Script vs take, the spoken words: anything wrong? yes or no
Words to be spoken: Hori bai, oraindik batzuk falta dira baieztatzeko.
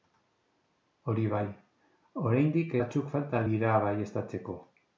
no